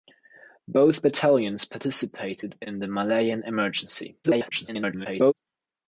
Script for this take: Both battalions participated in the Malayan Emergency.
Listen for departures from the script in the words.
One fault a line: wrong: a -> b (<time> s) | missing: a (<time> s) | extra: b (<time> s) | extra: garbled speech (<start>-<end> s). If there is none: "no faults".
extra: garbled speech (4.2-5.3 s)